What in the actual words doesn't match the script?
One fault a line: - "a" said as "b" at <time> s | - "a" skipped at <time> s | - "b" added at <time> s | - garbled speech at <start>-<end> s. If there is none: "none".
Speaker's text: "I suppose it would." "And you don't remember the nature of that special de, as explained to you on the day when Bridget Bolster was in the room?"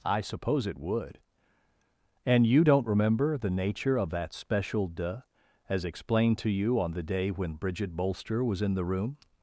none